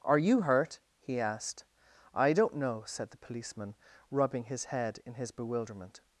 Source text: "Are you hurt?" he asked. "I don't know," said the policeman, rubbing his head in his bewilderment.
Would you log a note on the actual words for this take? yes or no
no